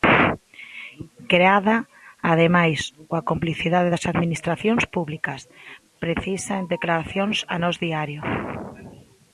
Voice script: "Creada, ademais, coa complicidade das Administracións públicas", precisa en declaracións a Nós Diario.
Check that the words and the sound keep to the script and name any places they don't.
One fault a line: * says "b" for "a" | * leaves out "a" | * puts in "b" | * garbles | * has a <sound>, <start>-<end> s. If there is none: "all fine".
all fine